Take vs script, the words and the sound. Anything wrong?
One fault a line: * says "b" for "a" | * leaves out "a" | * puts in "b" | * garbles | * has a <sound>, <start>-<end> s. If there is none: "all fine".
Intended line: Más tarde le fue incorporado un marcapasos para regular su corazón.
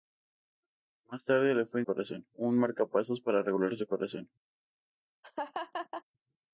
* says "corazón" for "incorporado"
* has a laugh, 5.2-6.0 s